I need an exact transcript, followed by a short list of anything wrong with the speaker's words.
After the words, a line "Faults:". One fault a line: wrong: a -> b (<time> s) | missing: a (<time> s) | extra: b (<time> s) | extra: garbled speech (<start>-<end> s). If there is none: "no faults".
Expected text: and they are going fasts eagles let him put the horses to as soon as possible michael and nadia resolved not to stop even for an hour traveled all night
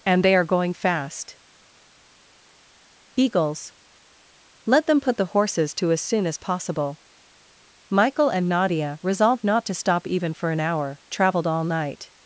and they are going fast eagles let them put the horses to as soon as possible michael and nadia resolved not to stop even for an hour traveled all night
Faults:
wrong: fasts -> fast (0.7 s)
wrong: him -> them (4.9 s)